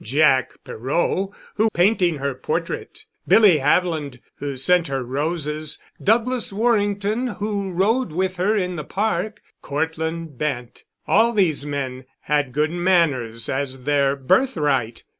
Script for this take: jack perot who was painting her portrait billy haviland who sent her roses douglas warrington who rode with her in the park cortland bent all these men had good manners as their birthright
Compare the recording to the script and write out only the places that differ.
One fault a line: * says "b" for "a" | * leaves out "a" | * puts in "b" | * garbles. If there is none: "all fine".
* leaves out "was"